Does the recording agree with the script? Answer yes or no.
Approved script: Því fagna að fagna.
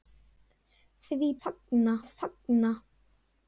yes